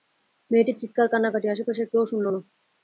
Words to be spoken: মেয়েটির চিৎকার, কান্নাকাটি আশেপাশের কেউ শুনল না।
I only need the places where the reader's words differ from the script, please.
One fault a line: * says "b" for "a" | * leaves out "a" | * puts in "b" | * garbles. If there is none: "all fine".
all fine